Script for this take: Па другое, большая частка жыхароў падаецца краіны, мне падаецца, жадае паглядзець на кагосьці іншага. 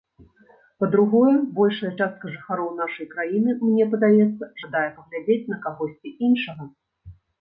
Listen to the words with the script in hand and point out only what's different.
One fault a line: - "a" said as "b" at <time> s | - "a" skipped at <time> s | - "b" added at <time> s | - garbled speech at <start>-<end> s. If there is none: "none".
- "падаецца" said as "нашай" at 2.8 s